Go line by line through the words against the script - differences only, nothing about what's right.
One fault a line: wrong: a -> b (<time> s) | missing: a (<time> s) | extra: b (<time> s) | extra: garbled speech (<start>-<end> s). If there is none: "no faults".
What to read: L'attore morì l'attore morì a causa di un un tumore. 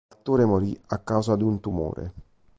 missing: l'attore morì (0.8 s)
missing: un (1.6 s)